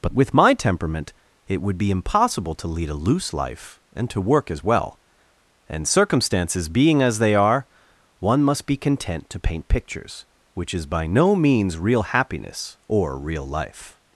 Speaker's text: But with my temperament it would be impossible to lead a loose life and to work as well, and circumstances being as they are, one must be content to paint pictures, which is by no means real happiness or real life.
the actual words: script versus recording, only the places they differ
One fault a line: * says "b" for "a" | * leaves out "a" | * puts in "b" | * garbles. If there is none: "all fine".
all fine